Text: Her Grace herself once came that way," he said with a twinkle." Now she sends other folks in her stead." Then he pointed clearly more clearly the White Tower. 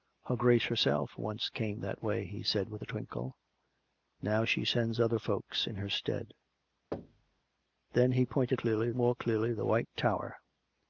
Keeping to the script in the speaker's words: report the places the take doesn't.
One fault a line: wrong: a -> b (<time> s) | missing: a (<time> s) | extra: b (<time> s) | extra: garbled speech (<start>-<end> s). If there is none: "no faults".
no faults